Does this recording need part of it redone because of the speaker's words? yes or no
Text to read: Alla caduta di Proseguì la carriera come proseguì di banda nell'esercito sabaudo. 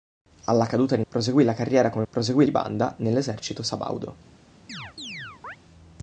no